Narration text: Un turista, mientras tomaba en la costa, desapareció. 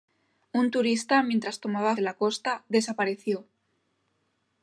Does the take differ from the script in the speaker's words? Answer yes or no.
no